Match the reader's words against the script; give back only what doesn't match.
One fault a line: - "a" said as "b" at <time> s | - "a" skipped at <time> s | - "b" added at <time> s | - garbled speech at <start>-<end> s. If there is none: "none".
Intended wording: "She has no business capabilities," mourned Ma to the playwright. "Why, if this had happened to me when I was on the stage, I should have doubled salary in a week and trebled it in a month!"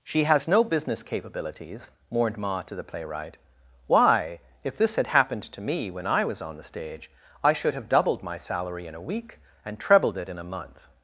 - "my" added at 8.2 s